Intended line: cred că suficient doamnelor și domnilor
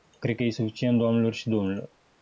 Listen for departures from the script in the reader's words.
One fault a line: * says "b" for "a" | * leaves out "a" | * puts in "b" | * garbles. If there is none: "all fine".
* puts in "e"